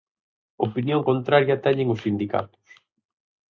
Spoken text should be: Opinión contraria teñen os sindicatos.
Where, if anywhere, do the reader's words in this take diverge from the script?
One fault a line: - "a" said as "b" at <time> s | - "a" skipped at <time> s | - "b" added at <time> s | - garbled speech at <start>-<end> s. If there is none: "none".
none